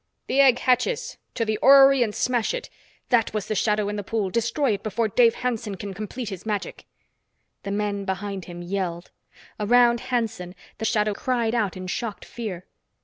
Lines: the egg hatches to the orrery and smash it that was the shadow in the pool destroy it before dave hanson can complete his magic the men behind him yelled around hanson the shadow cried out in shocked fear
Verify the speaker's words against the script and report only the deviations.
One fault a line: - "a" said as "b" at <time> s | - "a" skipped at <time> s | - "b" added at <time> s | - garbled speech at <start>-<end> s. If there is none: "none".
none